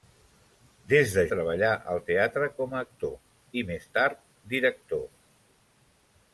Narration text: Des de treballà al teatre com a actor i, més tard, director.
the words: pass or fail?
pass